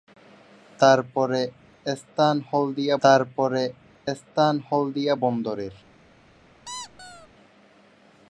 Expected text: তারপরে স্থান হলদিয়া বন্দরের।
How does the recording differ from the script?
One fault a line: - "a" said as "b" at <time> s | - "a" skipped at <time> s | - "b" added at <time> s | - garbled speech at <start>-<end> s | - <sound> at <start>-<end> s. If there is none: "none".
- "তারপরে স্থান হলদিয়া" added at 3.0 s
- squeak at 6.7-7.3 s